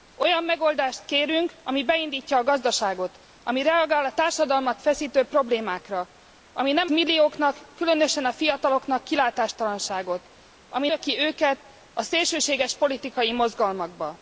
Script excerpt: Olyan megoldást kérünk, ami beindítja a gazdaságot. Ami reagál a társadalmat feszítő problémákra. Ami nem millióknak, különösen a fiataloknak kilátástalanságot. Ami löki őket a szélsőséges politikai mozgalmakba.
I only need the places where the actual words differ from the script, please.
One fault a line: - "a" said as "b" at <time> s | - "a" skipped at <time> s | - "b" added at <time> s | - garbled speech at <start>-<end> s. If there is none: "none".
none